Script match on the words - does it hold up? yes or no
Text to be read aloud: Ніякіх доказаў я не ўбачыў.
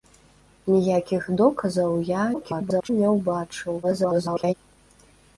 no